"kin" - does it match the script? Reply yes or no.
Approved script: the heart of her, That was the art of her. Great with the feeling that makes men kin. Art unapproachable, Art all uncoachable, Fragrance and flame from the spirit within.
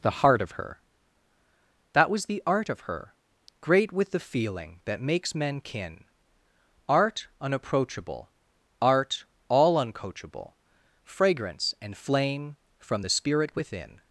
yes